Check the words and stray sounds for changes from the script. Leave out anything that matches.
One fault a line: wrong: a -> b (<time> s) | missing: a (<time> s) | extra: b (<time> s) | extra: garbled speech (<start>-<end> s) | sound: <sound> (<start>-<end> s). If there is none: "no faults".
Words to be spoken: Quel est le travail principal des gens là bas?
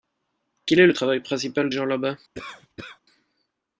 missing: des (1.7 s)
sound: cough (2.3-3.0 s)